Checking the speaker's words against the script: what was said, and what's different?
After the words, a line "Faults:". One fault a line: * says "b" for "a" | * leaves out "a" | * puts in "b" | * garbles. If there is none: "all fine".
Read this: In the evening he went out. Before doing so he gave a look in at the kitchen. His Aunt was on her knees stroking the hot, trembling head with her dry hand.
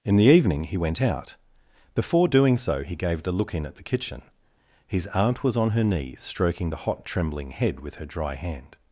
In the evening he went out. Before doing so he gave the look in at the kitchen. His Aunt was on her knees stroking the hot, trembling head with her dry hand.
Faults:
* says "the" for "a"